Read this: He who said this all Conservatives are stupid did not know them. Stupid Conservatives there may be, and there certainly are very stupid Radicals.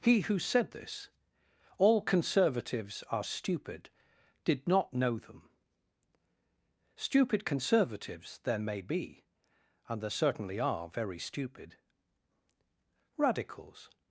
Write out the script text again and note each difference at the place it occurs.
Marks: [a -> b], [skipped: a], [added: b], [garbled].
He who said this all Conservatives are stupid did not know them. Stupid Conservatives there may be, and there certainly are very stupid Radicals.